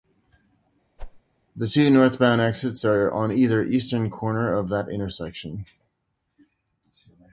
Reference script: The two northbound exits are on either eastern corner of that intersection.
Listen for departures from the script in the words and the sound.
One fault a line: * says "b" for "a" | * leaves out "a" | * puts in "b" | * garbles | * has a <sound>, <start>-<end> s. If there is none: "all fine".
* has a whoosh, 1.0-1.2 s